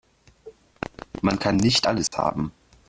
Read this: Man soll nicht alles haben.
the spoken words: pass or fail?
fail